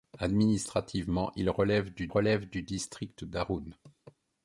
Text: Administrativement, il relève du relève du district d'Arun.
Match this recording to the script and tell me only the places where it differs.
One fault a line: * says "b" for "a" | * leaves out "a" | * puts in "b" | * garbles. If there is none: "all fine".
all fine